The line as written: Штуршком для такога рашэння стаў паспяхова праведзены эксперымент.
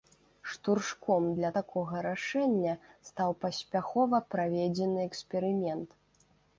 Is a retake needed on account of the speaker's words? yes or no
no